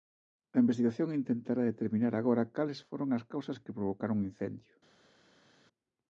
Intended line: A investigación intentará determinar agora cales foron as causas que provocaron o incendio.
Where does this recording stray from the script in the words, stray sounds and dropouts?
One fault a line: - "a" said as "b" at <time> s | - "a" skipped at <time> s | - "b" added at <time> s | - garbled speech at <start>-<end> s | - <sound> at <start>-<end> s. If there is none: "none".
none